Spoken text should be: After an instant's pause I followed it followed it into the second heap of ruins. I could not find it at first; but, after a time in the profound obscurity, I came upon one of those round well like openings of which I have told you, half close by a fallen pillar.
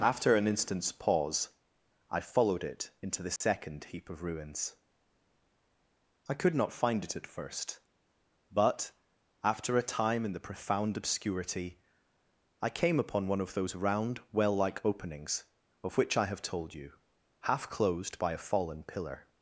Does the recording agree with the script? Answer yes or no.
no